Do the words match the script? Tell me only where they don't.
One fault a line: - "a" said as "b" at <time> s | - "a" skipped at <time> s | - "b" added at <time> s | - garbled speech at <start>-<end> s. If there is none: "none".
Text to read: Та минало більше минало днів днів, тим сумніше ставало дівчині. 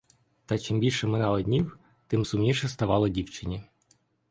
- "минало" said as "чим" at 0.6 s
- "днів" skipped at 1.8 s